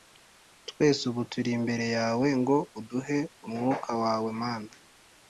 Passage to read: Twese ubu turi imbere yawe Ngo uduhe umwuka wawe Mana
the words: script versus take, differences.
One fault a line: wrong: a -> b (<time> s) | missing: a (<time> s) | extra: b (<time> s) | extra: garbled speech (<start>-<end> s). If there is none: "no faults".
no faults